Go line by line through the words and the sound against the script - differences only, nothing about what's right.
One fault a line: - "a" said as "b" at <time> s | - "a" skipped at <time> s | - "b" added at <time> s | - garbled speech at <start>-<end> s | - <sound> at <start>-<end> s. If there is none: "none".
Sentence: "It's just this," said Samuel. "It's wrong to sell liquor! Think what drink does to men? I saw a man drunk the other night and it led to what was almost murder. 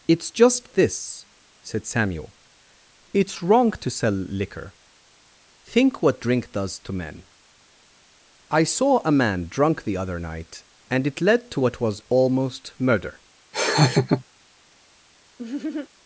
- laugh at 13.5-14.2 s
- laugh at 15.4-15.9 s